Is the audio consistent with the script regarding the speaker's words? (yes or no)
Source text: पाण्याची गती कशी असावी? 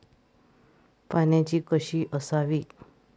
no